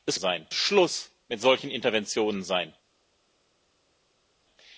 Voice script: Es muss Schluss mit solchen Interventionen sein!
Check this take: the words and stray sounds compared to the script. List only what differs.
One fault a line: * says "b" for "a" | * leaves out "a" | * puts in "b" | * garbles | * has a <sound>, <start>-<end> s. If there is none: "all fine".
* says "sein" for "muss"